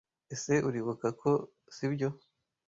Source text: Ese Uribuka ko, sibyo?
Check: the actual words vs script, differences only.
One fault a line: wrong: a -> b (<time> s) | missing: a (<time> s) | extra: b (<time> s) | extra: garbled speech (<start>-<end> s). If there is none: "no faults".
no faults